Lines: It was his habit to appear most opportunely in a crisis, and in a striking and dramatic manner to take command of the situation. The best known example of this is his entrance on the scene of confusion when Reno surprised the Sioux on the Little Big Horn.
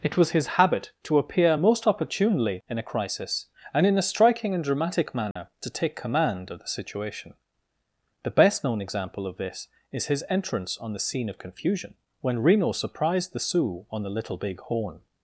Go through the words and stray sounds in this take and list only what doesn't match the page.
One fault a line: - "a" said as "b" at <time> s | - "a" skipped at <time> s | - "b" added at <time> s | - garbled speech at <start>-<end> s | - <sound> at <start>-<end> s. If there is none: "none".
- dropout at 5.3-5.4 s